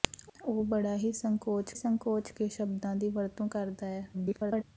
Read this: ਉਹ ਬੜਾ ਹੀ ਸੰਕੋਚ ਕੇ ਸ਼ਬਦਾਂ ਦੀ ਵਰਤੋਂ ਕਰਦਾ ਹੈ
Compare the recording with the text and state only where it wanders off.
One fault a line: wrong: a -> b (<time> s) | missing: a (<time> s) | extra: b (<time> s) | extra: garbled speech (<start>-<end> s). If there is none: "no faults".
extra: ਸੰਕੋਚ (1.7 s)
extra: garbled speech (4.1-4.6 s)